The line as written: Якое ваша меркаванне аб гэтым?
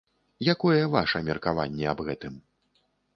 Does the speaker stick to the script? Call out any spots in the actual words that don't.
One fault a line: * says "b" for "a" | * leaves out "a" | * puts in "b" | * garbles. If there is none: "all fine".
all fine